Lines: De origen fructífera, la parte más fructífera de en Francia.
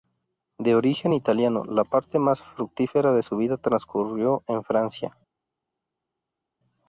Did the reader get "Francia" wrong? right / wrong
right